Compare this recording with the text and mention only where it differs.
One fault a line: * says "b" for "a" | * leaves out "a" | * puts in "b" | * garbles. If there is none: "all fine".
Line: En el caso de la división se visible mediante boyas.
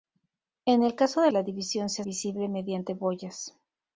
all fine